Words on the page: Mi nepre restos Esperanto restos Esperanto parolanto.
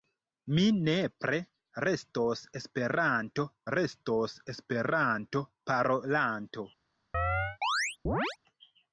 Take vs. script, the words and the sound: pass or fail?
fail